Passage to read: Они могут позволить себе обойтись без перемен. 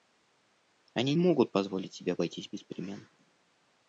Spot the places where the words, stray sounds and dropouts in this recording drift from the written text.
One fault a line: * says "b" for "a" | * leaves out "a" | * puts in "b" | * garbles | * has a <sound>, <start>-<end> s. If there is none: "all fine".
all fine